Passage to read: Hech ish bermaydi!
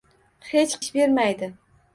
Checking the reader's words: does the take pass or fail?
pass